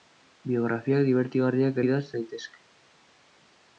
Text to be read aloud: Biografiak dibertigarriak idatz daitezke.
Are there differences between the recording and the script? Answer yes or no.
no